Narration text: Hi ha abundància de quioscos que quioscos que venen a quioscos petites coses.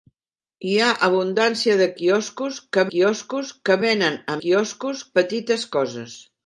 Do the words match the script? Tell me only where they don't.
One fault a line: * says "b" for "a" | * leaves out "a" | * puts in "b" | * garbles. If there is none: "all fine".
all fine